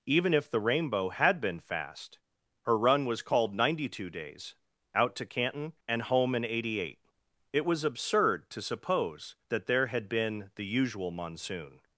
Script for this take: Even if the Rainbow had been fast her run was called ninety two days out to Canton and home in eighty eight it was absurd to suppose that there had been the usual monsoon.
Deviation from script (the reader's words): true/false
false